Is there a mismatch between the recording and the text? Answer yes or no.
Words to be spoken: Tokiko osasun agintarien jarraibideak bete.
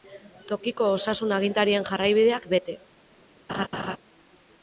no